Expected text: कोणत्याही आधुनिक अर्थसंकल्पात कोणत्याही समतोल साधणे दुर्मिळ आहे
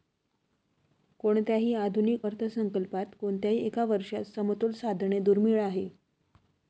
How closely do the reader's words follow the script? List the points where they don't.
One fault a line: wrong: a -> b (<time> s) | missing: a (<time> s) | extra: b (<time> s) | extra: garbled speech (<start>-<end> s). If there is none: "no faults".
extra: एका वर्षात (3.7 s)